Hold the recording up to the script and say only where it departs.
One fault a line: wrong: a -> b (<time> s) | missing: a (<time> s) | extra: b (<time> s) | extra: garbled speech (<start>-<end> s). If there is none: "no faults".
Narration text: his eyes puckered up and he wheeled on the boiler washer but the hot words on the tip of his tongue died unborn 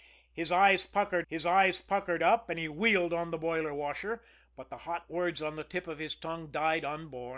extra: his eyes puckered (1.3 s)